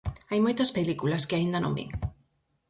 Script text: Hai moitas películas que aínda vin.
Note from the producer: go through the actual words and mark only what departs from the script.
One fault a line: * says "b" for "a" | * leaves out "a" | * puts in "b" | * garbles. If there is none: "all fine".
* puts in "non"